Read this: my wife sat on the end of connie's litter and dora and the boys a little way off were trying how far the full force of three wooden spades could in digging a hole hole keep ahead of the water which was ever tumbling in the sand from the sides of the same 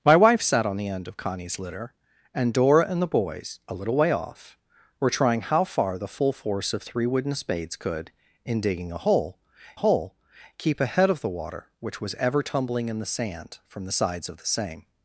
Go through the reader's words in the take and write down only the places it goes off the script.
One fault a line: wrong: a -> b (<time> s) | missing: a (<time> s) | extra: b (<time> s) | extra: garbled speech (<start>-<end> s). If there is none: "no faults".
no faults